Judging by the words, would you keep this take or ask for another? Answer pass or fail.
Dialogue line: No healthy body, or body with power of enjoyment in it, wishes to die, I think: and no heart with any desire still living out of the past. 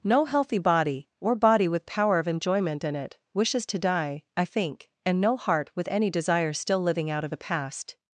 pass